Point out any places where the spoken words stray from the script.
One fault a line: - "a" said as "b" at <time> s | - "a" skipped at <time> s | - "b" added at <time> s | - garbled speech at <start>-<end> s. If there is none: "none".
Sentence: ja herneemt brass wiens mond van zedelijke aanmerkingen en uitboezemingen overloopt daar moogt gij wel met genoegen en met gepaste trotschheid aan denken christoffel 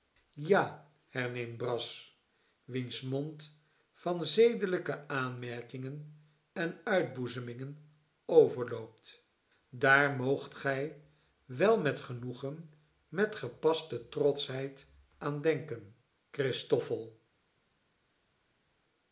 - "en" skipped at 12.7 s